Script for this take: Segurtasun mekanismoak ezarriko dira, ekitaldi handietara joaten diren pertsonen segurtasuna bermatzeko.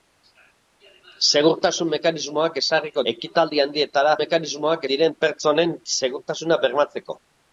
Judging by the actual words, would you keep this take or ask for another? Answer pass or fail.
fail